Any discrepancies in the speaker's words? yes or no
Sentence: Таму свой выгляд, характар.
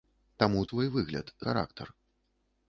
no